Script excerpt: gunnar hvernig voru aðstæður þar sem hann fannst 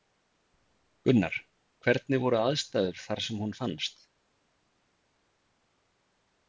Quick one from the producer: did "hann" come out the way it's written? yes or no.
no